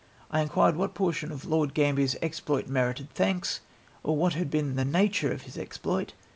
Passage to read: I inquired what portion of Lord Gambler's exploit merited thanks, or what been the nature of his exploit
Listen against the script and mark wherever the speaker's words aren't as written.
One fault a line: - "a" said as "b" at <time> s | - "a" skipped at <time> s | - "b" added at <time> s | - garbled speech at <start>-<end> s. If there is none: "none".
- "had" added at 4.3 s